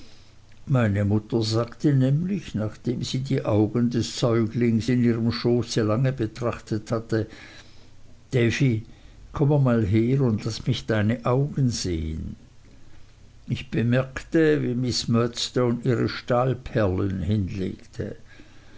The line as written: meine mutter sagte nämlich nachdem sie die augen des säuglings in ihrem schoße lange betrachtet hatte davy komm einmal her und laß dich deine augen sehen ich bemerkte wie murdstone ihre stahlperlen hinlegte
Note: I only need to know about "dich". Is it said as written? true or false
false